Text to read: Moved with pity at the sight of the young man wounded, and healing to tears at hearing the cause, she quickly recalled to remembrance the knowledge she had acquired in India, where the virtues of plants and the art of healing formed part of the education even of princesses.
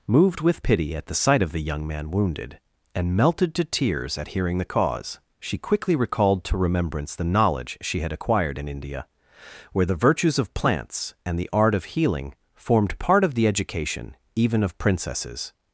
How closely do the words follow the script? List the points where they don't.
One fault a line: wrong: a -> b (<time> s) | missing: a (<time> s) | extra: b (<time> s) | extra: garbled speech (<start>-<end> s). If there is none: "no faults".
wrong: healing -> melted (3.2 s)